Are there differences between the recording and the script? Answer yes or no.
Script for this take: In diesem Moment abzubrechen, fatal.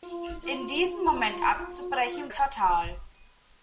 no